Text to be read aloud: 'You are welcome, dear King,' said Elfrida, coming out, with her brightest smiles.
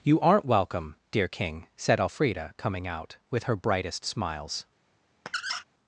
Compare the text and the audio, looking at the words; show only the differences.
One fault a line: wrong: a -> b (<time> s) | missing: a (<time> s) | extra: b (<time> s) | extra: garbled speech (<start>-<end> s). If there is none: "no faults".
wrong: are -> aren't (0.2 s)